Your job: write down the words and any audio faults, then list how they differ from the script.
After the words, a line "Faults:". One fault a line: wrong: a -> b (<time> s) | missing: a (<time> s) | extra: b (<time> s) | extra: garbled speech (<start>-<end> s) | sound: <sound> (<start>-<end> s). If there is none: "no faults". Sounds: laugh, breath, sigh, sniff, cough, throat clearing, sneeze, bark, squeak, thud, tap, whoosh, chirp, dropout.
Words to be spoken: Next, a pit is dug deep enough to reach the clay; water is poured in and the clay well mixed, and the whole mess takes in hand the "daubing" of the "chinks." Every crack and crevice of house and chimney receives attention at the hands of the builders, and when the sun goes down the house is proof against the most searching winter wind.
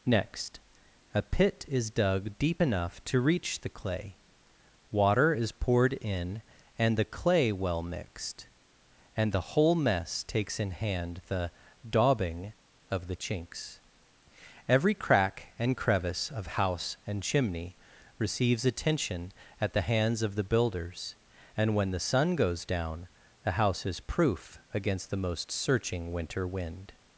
Next, a pit is dug deep enough to reach the clay; water is poured in and the clay well mixed, and the whole mess takes in hand the "daubing" of the "chinks." Every crack and crevice of house and chimney receives attention at the hands of the builders, and when the sun goes down the house is proof against the most searching winter wind.
Faults:
no faults